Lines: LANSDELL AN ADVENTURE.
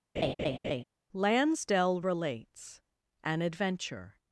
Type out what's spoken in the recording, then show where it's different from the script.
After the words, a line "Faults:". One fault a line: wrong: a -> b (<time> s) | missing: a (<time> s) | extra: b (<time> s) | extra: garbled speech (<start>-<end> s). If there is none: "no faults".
LANSDELL RELATES AN ADVENTURE.
Faults:
extra: RELATES (2.0 s)